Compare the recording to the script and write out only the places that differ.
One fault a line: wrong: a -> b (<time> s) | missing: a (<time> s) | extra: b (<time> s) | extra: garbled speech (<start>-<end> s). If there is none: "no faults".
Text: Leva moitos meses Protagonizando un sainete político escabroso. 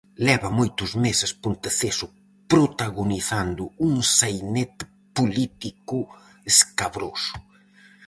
extra: Ponteceso (1.4 s)